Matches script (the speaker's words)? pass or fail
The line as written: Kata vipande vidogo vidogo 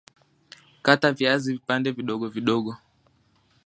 fail